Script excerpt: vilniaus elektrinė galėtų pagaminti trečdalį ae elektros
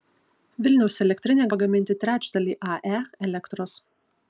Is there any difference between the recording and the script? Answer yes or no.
yes